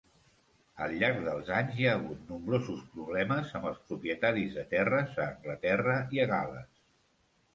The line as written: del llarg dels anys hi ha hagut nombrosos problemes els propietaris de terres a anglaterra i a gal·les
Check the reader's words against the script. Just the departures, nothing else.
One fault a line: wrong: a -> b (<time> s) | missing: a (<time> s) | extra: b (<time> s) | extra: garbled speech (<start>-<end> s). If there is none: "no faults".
wrong: del -> al (0.8 s)
extra: amb (3.6 s)